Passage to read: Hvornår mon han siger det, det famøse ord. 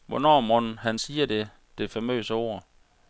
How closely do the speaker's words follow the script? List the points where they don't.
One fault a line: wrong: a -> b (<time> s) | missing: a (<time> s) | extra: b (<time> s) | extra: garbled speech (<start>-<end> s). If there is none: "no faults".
no faults